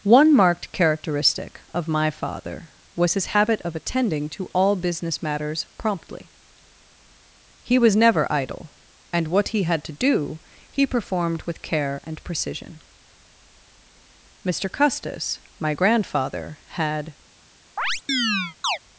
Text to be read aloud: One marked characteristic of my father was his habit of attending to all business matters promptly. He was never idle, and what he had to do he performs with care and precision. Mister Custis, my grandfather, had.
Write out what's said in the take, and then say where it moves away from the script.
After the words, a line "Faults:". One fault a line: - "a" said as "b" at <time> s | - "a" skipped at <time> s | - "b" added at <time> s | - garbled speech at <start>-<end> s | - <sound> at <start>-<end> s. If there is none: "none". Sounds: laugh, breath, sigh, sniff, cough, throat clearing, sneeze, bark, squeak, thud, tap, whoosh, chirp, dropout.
One marked characteristic of my father was his habit of attending to all business matters promptly. He was never idle, and what he had to do he performed with care and precision. Mister Custis, my grandfather, had.
Faults:
- "performs" said as "performed" at 10.9 s
- chirp at 17.8-18.8 s